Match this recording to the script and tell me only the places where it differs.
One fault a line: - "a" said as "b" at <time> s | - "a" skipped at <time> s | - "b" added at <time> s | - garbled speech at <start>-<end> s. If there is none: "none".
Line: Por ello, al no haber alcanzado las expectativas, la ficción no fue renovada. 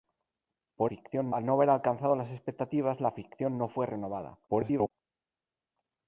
- "ello" said as "ficción" at 0.8 s
- garbled speech at 4.5-4.9 s